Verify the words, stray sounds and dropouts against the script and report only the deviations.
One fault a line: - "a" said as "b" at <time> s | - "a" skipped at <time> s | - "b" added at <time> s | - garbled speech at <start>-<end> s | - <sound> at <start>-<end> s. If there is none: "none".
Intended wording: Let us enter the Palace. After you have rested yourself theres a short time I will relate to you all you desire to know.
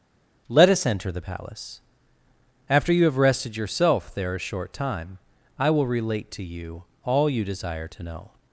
- "theres" said as "there" at 4.1 s